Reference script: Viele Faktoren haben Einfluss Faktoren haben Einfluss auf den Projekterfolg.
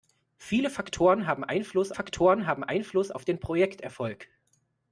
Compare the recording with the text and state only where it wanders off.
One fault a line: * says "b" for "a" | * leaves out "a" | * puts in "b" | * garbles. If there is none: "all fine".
all fine